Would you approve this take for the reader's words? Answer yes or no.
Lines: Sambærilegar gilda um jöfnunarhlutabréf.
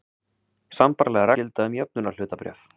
yes